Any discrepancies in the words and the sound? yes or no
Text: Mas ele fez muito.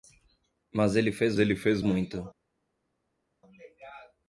yes